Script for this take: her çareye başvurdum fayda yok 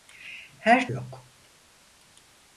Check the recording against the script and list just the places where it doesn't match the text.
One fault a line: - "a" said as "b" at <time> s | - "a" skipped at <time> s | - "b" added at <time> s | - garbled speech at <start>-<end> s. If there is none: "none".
- "çareye başvurdum fayda" skipped at 0.9 s